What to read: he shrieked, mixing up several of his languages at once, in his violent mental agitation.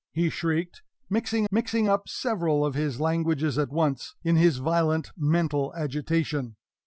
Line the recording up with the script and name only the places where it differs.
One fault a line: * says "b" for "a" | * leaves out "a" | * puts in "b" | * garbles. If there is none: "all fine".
* puts in "mixing"